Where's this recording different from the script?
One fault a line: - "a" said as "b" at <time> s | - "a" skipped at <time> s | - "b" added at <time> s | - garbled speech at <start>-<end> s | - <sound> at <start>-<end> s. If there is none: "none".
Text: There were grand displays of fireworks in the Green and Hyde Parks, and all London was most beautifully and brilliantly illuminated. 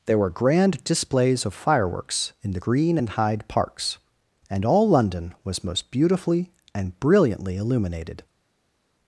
none